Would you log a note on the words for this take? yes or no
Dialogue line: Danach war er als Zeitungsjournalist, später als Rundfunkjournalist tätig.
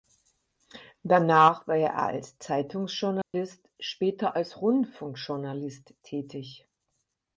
no